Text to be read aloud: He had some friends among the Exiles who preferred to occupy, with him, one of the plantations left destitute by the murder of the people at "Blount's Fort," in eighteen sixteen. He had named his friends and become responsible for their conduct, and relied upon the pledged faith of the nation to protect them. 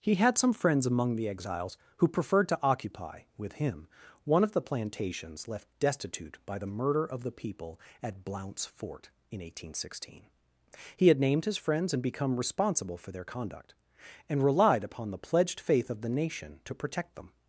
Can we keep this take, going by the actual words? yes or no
yes